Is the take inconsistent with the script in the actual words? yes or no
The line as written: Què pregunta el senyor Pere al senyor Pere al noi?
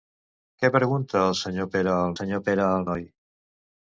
no